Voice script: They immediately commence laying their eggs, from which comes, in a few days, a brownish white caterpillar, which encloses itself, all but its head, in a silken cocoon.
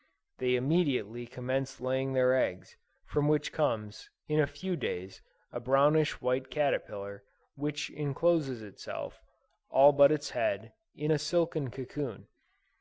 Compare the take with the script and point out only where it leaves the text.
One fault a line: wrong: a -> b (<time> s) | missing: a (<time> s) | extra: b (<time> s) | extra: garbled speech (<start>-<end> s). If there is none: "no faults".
no faults